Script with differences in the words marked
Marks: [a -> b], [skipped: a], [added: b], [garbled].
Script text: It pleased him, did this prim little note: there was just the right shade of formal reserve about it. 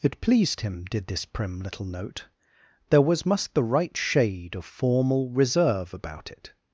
It pleased him, did this prim little note: there was [just -> must] the right shade of formal reserve about it.